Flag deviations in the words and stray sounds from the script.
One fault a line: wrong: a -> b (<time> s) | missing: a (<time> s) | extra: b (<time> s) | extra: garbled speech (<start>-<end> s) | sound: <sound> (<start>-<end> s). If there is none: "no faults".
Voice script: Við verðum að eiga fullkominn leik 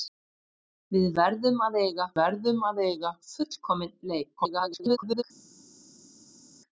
extra: verðum að eiga (2.2 s)
extra: garbled speech (4.4-5.2 s)